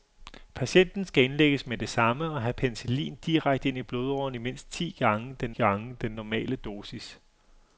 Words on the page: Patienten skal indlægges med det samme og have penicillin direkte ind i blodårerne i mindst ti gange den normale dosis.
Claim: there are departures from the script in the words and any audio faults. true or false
true